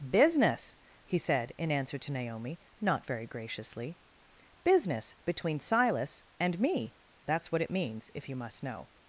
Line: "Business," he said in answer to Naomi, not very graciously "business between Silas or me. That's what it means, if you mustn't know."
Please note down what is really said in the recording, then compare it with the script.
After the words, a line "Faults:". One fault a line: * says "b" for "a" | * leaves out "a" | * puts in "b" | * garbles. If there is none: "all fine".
"Business," he said in answer to Naomi, not very graciously "business between Silas and me. That's what it means, if you must know."
Faults:
* says "and" for "or"
* says "must" for "mustn't"